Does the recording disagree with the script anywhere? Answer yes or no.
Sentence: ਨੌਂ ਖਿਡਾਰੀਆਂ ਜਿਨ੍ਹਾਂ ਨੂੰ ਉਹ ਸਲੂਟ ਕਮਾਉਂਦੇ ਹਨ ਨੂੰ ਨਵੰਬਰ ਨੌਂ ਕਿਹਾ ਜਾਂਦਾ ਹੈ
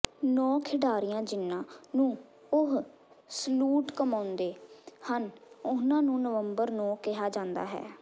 yes